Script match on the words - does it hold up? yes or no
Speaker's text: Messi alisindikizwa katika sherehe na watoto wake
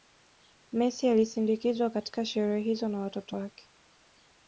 no